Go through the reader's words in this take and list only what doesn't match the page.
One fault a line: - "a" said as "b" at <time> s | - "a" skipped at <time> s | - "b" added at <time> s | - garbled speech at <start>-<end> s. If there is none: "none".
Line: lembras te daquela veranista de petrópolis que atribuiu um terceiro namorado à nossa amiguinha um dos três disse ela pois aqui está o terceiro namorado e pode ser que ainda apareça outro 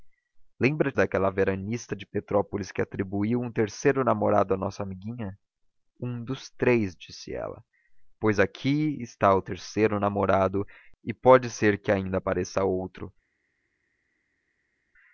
- "te" skipped at 0.9 s